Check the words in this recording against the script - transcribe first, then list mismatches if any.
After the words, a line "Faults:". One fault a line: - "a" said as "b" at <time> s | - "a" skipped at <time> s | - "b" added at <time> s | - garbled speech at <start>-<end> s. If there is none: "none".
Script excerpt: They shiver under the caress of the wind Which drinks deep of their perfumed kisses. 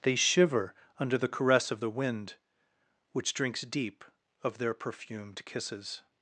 They shiver under the caress of the wind Which drinks deep of their perfumed kisses.
Faults:
none